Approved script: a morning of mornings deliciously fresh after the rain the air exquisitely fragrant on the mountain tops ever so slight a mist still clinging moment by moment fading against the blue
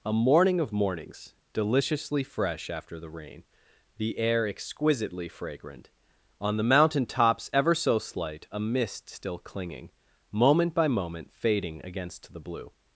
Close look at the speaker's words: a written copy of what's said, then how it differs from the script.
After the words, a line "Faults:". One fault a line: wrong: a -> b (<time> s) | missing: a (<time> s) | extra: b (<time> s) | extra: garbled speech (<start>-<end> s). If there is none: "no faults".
a morning of mornings deliciously fresh after the rain the air exquisitely fragrant on the mountain tops ever so slight a mist still clinging moment by moment fading against the blue
Faults:
no faults